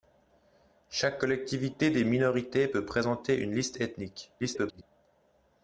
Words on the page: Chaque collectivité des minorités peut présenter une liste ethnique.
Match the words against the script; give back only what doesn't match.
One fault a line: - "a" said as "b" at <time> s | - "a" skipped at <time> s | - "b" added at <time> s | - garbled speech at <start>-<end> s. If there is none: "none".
- garbled speech at 4.4-4.8 s